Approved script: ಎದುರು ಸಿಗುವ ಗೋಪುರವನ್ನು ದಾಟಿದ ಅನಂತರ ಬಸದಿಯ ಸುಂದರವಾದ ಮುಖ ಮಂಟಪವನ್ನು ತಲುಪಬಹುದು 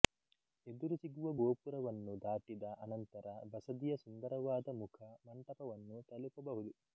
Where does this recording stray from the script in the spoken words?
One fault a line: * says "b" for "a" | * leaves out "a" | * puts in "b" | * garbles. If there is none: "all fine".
all fine